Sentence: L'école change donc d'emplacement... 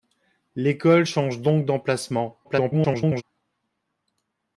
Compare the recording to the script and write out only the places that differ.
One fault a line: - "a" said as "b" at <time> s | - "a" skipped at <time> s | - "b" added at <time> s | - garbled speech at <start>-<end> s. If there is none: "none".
- garbled speech at 2.4-3.2 s